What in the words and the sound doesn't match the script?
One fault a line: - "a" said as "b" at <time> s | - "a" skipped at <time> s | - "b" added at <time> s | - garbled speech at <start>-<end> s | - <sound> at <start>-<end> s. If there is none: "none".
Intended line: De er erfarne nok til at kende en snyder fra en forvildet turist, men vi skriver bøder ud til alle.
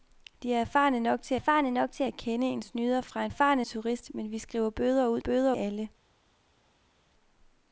- "erfarne nok til" added at 1.3 s
- "forvildet" said as "erfarne" at 3.3 s
- "til" said as "bøder" at 5.2 s